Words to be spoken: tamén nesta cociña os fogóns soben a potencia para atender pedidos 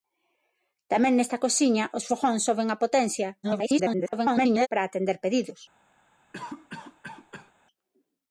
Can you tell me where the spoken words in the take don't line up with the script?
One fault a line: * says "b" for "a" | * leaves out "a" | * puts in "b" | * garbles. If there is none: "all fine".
* garbles